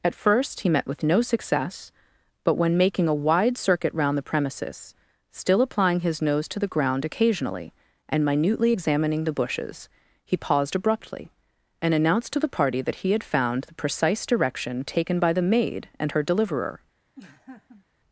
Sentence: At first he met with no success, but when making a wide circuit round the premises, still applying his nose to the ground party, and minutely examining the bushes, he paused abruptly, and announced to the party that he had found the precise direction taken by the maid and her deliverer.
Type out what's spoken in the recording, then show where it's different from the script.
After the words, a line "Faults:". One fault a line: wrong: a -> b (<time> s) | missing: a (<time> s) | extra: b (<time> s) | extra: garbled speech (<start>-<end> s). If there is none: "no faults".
At first he met with no success, but when making a wide circuit round the premises, still applying his nose to the ground occasionally, and minutely examining the bushes, he paused abruptly, and announced to the party that he had found the precise direction taken by the maid and her deliverer.
Faults:
wrong: party -> occasionally (7.0 s)